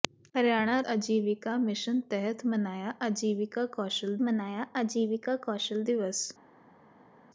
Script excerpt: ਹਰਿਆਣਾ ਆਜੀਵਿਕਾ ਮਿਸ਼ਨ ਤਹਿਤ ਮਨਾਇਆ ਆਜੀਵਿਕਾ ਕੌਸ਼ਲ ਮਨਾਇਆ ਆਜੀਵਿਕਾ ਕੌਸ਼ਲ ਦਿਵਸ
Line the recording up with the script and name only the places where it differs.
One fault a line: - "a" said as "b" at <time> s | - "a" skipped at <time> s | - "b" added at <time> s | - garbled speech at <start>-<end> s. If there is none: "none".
none